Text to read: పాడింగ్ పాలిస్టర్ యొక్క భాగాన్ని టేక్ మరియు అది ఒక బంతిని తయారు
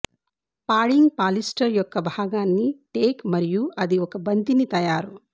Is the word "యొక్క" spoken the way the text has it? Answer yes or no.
yes